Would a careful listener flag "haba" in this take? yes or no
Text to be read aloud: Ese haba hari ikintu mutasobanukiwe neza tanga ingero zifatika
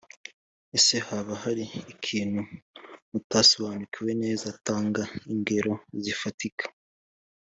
no